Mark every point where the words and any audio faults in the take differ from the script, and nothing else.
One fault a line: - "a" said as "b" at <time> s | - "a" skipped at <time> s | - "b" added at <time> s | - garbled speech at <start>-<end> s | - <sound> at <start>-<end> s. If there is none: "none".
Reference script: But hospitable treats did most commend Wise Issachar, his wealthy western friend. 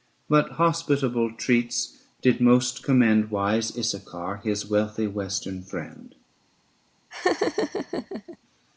- laugh at 7.1-8.4 s